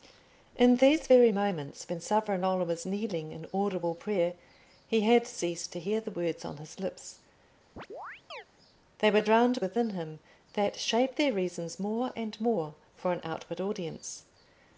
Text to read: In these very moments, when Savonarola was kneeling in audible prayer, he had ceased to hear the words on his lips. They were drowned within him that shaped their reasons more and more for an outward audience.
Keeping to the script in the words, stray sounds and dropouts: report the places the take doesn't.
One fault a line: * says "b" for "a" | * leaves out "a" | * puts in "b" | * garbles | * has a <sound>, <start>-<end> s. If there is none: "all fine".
* has a chirp, 7.8-8.4 s